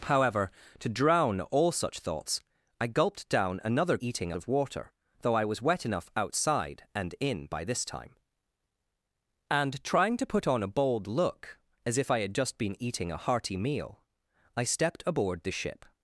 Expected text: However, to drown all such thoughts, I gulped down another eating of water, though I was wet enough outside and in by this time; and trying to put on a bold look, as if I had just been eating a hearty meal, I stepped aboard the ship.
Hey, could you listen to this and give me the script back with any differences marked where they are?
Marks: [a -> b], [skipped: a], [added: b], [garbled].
However, to drown all such thoughts, I gulped down another eating of water, though I was wet enough outside and in by this time; and trying to put on a bold look, as if I had just been eating a hearty meal, I stepped aboard the ship.